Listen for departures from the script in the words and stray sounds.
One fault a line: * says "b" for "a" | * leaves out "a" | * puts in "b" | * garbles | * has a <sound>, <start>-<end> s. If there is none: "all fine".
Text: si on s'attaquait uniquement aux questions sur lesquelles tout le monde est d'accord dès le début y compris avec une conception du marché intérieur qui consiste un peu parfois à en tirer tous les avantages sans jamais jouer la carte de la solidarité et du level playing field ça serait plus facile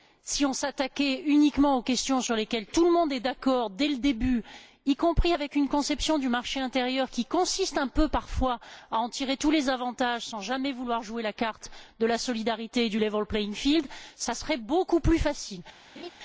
* puts in "vouloir"
* puts in "beaucoup"
* has a laugh, 16.0-16.1 s